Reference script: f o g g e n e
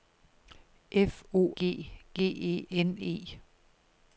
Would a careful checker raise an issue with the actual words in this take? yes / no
no